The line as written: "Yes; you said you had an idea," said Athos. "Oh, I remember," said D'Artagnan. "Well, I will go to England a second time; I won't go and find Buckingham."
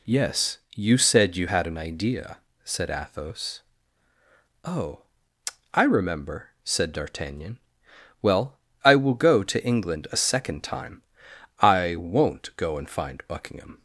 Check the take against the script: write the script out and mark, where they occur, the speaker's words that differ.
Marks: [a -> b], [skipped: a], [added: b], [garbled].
"Yes; you said you had an idea," said Athos. "Oh, I remember," said D'Artagnan. "Well, I will go to England a second time; I won't go and find Buckingham."